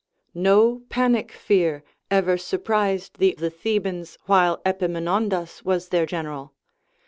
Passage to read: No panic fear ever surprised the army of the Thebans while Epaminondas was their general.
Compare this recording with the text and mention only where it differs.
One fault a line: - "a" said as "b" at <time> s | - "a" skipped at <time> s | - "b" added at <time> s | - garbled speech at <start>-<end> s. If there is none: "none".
- "army of" skipped at 3.4 s